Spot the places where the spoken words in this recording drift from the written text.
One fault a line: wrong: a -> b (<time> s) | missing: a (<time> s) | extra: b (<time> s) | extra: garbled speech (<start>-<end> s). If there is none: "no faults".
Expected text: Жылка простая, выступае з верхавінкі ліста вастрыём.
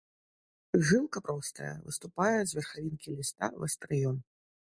no faults